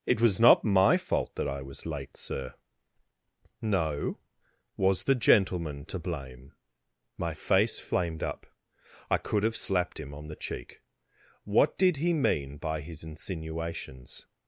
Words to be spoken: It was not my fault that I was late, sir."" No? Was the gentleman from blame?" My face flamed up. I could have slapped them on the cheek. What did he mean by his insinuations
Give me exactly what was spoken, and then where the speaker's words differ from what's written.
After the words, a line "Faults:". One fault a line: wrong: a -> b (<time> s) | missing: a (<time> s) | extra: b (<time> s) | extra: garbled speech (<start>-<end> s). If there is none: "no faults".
It was not my fault that I was late, sir."" No? Was the gentleman to blame?" My face flamed up. I could have slapped him on the cheek. What did he mean by his insinuations
Faults:
wrong: from -> to (5.8 s)
wrong: them -> him (10.0 s)